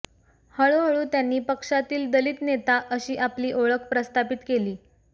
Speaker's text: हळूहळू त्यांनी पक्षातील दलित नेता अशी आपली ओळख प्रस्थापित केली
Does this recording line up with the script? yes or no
yes